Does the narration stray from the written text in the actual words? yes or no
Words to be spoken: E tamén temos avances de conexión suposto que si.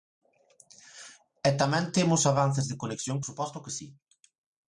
no